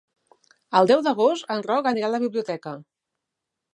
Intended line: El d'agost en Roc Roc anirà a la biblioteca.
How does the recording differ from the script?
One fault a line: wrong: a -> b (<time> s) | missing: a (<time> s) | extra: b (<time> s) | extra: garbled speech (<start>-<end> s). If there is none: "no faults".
extra: deu (0.9 s)
missing: Roc (1.9 s)